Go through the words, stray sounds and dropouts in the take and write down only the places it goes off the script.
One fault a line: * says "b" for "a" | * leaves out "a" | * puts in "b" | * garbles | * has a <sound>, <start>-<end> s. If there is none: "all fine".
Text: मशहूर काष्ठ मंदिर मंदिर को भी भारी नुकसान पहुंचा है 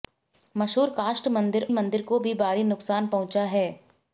all fine